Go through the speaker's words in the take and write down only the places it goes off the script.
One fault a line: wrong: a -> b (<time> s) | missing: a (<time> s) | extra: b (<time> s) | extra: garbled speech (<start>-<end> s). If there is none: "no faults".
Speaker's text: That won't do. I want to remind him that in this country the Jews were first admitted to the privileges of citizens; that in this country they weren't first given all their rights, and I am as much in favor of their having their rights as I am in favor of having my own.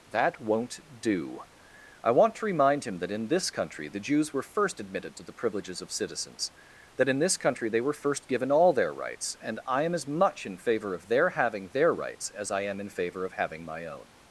wrong: weren't -> were (7.8 s)